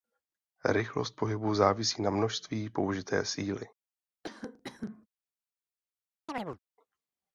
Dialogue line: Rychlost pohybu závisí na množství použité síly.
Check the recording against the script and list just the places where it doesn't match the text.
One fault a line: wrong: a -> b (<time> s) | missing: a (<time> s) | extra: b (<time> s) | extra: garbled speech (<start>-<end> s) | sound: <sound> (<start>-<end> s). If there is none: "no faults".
sound: cough (4.2-5.1 s)
sound: chirp (6.3-6.6 s)